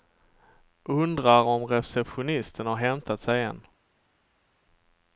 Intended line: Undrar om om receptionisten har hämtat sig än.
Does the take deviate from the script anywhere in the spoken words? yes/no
yes